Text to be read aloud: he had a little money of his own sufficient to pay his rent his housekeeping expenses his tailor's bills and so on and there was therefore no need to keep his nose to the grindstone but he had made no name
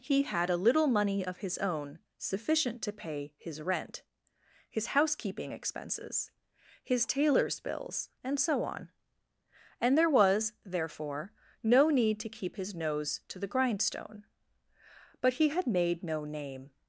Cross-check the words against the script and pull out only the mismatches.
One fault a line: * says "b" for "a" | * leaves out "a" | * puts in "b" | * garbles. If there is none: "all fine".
all fine